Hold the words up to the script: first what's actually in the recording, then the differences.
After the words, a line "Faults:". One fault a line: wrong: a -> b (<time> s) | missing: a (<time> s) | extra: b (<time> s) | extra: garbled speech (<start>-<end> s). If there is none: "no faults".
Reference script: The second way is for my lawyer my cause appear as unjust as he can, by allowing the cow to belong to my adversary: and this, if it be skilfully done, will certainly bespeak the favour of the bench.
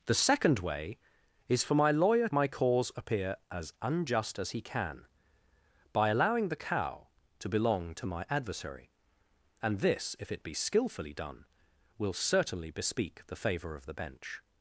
The second way is for my lawyer my cause appear as unjust as he can, by allowing the cow to belong to my adversary: and this, if it be skilfully done, will certainly bespeak the favour of the bench.
Faults:
no faults